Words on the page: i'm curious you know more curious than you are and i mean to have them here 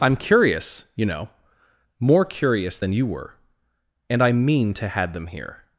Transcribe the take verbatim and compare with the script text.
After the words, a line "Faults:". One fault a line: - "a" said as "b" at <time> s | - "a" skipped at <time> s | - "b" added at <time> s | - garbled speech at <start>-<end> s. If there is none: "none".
i'm curious you know more curious than you were and i mean to had them here
Faults:
- "are" said as "were" at 3.0 s
- "have" said as "had" at 4.9 s